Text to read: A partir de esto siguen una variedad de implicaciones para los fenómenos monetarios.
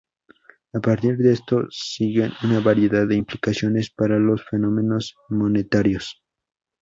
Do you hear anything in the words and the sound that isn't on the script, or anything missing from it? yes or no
no